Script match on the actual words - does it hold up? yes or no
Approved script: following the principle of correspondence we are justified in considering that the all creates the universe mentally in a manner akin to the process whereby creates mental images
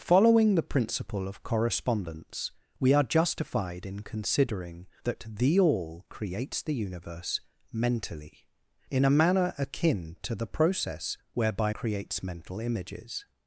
yes